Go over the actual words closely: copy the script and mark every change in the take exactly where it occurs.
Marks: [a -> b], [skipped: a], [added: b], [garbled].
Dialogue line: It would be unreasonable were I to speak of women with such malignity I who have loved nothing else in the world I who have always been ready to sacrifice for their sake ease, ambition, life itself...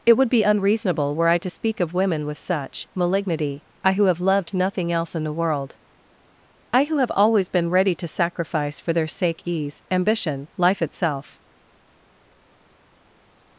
It would be unreasonable were I to speak of women with such malignity I who have loved nothing else in the world I who have always been ready to sacrifice for their sake ease, ambition, life itself...